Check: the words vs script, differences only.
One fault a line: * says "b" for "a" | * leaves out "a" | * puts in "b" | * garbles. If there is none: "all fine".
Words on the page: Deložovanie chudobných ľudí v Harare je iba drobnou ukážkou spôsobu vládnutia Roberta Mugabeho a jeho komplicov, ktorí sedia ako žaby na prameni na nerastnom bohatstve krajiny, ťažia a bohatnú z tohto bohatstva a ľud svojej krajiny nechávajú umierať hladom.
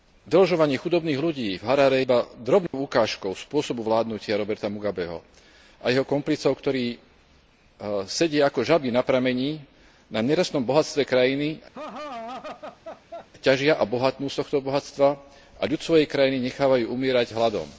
* leaves out "je"